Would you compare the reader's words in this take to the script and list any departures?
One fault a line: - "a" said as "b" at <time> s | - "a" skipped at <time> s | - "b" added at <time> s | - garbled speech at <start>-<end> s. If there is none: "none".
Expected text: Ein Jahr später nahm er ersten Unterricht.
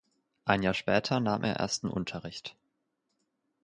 none